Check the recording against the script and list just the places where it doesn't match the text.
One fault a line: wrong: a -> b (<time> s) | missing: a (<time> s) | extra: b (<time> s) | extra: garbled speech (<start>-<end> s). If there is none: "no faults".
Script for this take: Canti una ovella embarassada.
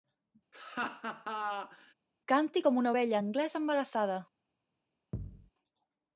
extra: com (2.6 s)
extra: anglesa (3.2 s)